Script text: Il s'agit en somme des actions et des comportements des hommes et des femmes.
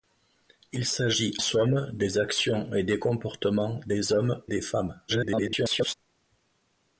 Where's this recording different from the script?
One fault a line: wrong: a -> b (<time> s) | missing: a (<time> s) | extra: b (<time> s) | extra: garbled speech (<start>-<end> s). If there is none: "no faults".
missing: en (1.4 s)
missing: et (4.4 s)
extra: garbled speech (5.1-5.9 s)